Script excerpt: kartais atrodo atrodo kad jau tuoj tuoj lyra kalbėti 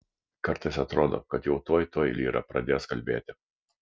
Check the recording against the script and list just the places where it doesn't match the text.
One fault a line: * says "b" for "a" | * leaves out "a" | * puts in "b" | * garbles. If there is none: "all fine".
* leaves out "atrodo"
* puts in "pradės"